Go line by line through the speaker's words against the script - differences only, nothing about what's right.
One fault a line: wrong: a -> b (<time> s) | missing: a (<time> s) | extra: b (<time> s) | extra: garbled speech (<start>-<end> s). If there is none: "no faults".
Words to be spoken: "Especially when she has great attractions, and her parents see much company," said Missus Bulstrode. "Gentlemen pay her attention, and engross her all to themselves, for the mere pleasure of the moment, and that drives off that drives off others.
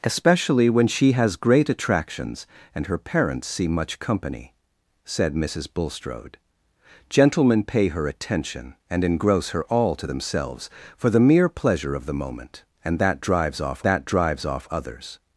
no faults